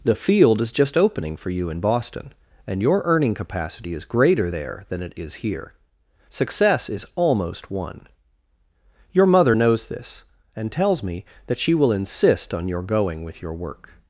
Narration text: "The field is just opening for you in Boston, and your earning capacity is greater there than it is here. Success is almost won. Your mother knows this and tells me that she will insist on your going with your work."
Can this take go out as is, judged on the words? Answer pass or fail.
pass